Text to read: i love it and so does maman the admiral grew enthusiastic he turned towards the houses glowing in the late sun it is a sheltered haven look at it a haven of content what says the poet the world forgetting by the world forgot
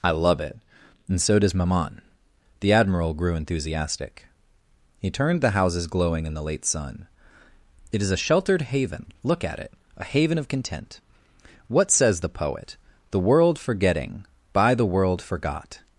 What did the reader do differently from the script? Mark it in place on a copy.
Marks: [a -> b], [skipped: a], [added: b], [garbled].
i love it and so does maman the admiral grew enthusiastic he turned [skipped: towards] the houses glowing in the late sun it is a sheltered haven look at it a haven of content what says the poet the world forgetting by the world forgot